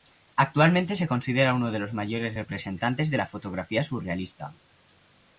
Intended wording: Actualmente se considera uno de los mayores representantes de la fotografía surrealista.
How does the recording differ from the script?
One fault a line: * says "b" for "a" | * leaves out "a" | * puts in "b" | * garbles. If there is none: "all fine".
all fine